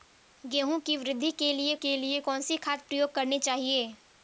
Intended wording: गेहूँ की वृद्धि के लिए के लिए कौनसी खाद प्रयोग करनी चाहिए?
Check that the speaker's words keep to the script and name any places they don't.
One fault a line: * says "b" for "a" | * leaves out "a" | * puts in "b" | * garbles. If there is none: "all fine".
all fine